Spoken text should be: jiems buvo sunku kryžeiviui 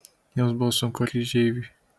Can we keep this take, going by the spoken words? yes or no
yes